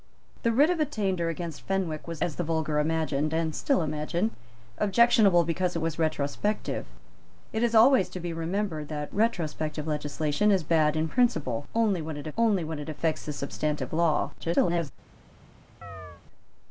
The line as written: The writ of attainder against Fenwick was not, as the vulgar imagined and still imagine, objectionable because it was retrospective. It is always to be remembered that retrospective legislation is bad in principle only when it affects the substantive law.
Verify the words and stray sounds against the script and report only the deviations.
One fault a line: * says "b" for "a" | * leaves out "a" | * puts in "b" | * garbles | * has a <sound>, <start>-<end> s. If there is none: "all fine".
* leaves out "not"
* puts in "only when it"
* garbles
* has a chirp, 15.8-16.2 s